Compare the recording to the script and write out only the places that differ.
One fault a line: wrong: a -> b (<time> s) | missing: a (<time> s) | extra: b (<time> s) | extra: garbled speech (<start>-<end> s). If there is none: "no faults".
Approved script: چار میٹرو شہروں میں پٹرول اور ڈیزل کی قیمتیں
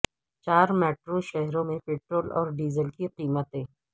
no faults